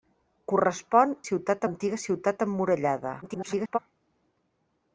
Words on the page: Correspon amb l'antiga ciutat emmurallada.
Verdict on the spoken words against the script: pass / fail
fail